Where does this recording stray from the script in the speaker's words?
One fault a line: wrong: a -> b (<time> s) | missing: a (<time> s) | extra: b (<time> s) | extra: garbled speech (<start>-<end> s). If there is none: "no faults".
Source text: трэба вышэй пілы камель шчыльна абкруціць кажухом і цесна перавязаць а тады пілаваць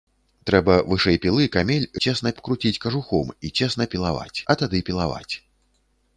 wrong: шчыльна -> цесна (2.0 s)
wrong: перавязаць -> пілаваць (4.0 s)